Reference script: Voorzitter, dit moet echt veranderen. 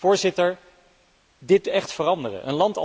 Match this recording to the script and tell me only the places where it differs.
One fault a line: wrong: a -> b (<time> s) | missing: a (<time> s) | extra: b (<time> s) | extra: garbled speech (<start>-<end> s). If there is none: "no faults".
missing: moet (1.7 s)